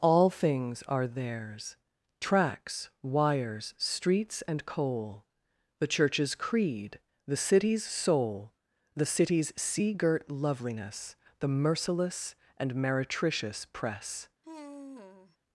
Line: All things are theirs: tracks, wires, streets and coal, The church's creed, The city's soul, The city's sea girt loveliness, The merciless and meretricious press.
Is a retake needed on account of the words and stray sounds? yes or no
yes